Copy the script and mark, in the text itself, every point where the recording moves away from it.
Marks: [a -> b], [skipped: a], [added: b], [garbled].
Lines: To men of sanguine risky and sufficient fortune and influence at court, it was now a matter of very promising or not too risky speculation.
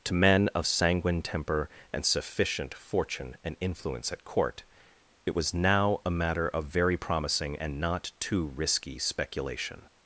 To men of sanguine [risky -> temper] and sufficient fortune and influence at court, it was now a matter of very promising [or -> and] not too risky speculation.